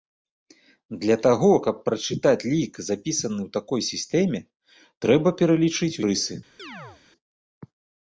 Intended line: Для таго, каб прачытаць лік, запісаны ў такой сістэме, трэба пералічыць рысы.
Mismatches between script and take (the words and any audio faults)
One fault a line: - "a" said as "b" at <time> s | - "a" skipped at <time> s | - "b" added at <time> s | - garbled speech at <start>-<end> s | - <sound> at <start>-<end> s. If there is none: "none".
- chirp at 6.6-7.0 s